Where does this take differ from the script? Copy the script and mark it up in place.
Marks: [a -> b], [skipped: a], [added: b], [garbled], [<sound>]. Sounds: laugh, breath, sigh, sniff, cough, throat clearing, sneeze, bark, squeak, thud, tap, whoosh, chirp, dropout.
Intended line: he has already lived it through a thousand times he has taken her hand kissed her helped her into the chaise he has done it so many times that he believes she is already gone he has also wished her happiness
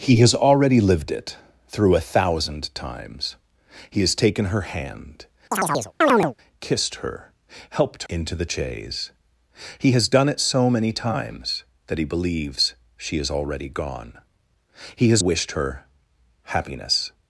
he has already lived it through a thousand times he has taken her hand [chirp] kissed her helped [skipped: her] into the chaise he has done it so many times that he believes she is already gone he has [skipped: also] wished her happiness